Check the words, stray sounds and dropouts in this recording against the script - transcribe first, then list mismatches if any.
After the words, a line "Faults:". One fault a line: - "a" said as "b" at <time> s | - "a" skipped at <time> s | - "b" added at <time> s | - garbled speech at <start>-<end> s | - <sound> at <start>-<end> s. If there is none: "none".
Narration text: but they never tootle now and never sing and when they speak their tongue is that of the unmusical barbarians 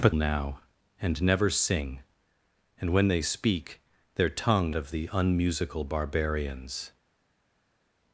but now and never sing and when they speak their tongue of the unmusical barbarians
Faults:
- "they never tootle" skipped at 0.1 s
- "is that" skipped at 4.7 s